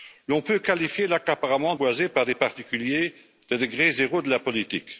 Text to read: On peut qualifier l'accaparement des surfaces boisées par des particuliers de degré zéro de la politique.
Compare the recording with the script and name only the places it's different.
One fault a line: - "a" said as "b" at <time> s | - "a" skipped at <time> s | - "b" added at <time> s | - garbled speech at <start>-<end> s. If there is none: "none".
- "des surfaces" skipped at 1.8 s